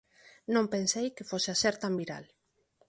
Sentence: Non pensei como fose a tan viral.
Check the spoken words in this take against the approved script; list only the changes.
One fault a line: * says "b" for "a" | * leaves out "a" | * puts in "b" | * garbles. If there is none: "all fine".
* says "que" for "como"
* puts in "ser"